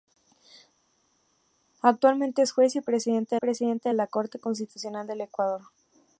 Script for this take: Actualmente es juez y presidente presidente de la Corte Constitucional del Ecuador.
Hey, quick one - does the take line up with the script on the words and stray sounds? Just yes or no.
yes